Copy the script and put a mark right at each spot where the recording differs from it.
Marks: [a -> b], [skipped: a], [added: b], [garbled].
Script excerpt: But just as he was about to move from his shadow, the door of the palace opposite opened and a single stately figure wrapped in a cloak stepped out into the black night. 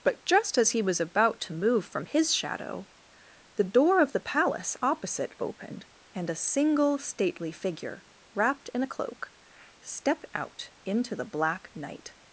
But just as he was about to move from his shadow, the door of the palace opposite opened and a single stately figure wrapped in a cloak stepped out into the black night.